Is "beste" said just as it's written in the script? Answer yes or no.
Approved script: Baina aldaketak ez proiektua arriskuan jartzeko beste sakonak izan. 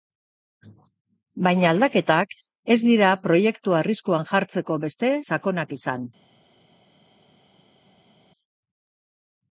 yes